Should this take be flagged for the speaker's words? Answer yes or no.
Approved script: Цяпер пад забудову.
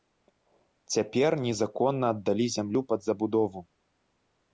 yes